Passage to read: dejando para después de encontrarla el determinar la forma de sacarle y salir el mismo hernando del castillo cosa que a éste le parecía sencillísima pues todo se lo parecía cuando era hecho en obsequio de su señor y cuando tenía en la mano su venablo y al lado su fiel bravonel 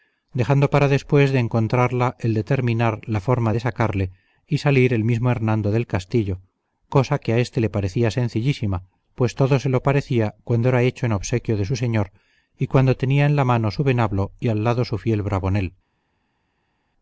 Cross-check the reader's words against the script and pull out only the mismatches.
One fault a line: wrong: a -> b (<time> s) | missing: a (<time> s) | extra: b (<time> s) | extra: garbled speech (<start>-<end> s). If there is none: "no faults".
no faults